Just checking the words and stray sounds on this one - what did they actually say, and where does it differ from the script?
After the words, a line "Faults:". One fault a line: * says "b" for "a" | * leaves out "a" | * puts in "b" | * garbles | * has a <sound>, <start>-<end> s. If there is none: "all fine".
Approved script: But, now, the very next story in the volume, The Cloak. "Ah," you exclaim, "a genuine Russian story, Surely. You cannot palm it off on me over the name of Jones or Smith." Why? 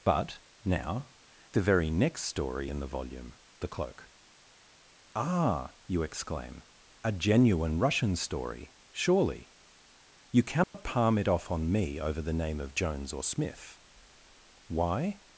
But, now, the very next story in the volume, The Cloak. "Ah," you exclaim, "a genuine Russian story, Surely. You cannot palm it off on me over the name of Jones or Smith." Why?
Faults:
* has a dropout, 10.6-10.7 s